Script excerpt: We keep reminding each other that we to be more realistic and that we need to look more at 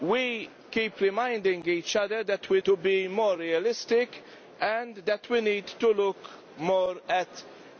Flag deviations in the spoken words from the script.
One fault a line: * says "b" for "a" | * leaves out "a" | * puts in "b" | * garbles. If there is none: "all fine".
all fine